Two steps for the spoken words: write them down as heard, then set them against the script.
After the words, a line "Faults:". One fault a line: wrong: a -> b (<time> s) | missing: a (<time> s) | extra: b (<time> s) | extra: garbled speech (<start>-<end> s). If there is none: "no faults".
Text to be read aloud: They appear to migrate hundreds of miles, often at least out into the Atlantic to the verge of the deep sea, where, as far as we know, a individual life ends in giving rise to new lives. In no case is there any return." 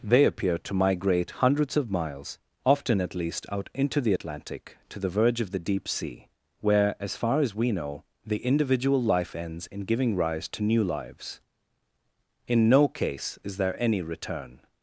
They appear to migrate hundreds of miles, often at least out into the Atlantic to the verge of the deep sea, where, as far as we know, the individual life ends in giving rise to new lives. In no case is there any return."
Faults:
wrong: a -> the (8.2 s)